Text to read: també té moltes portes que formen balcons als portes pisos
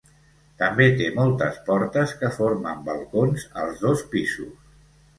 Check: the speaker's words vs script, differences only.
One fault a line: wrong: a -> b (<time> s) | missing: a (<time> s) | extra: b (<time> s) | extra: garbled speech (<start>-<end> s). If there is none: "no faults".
wrong: portes -> dos (3.9 s)